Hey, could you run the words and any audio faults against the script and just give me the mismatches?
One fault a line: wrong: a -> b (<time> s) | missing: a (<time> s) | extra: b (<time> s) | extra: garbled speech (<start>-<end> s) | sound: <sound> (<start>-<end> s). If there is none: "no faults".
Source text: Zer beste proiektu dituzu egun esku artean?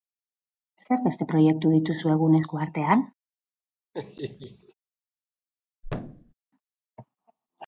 sound: laugh (3.9-4.7 s)
sound: thud (5.8-6.3 s)